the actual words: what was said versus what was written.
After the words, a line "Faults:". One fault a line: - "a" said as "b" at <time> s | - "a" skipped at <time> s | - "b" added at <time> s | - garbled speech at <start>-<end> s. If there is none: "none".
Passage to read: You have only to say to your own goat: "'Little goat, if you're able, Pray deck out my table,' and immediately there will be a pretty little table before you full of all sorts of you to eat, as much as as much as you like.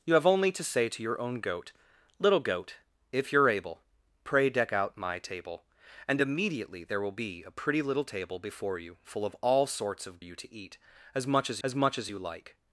You have only to say to your own goat: "'Little goat, if you're able, Pray deck out my table,' and immediately there will be a pretty little table before you full of all sorts of you to eat, as much as as much as you like.
Faults:
none